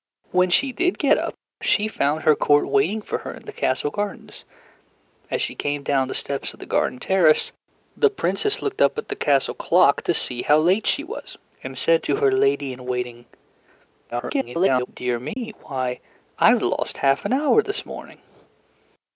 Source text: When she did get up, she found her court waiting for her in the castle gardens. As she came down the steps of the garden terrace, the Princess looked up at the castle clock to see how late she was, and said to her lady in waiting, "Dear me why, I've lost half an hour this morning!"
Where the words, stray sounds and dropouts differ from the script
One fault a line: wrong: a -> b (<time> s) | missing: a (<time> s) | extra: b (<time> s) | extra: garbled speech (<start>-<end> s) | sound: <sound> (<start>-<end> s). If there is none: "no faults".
extra: garbled speech (14.1-14.9 s)
sound: dropout (15.3-15.4 s)